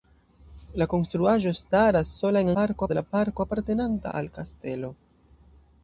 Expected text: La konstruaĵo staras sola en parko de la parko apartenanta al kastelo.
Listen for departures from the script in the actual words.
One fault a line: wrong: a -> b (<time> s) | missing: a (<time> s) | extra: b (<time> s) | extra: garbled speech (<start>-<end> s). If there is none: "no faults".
no faults